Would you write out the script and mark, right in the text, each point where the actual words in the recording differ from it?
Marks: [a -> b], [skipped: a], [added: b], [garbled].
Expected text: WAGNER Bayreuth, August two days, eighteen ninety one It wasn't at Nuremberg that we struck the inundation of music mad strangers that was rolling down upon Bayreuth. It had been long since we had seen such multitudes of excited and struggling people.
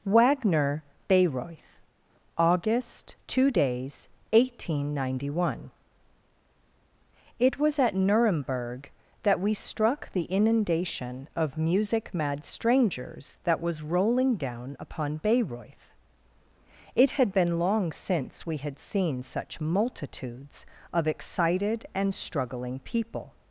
WAGNER Bayreuth, August two days, eighteen ninety one It [wasn't -> was] at Nuremberg that we struck the inundation of music mad strangers that was rolling down upon Bayreuth. It had been long since we had seen such multitudes of excited and struggling people.